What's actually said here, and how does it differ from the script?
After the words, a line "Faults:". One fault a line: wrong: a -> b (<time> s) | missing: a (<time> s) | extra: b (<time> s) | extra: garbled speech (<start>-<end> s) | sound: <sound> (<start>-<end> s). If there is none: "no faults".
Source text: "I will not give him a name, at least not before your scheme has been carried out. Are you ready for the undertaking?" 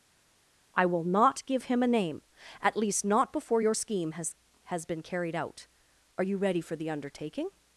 "I will not give him a name, at least not before your scheme has has been carried out. Are you ready for the undertaking?"
Faults:
extra: has (4.6 s)